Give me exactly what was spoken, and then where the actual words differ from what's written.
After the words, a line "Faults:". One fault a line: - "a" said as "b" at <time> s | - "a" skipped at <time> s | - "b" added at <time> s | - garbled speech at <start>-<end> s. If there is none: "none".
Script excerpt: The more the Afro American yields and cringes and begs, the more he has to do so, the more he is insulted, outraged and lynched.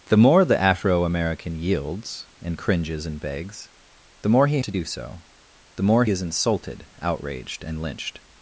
The more the Afro American yields and cringes and begs, the more he to do so, the more is insulted, outraged and lynched.
Faults:
- "has" skipped at 4.6 s
- "he" skipped at 6.0 s